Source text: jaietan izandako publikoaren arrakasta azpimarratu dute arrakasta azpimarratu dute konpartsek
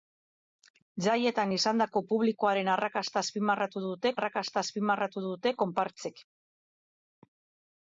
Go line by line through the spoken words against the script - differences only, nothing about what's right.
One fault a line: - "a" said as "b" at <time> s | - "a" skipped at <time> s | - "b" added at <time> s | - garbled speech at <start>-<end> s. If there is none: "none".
none